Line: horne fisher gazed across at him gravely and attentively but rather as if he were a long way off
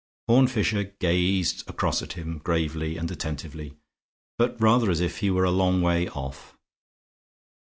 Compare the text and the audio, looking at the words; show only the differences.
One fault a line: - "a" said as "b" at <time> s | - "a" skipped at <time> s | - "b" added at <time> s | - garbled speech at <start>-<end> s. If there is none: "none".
none